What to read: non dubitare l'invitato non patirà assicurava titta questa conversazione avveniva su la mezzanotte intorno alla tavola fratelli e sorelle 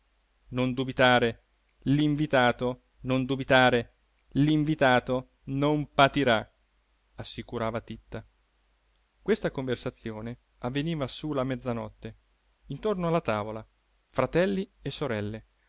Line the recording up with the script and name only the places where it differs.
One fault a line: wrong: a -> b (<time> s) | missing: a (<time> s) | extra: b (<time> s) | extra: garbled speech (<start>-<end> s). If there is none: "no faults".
extra: dubitare l'invitato non (3.2 s)